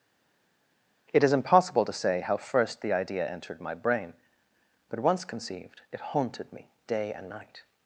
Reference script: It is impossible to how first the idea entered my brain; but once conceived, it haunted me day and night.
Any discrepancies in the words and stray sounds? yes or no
yes